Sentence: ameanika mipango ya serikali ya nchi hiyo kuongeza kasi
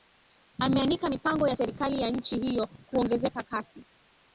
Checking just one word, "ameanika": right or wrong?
right